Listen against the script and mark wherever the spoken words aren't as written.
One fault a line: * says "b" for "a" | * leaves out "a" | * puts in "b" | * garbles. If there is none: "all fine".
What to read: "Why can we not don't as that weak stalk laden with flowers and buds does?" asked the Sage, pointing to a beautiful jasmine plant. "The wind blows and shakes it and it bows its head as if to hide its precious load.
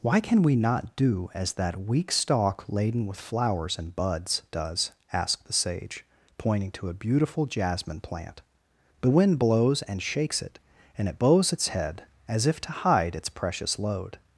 * says "do" for "don't"